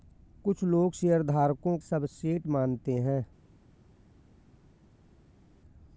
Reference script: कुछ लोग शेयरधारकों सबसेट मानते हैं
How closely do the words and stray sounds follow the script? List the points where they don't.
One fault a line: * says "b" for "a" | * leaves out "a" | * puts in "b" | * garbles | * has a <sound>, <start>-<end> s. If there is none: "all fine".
all fine